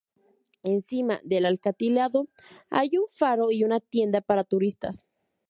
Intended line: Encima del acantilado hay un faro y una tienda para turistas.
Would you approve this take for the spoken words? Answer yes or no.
yes